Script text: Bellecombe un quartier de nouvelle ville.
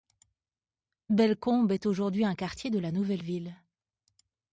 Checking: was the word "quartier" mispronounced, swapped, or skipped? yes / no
no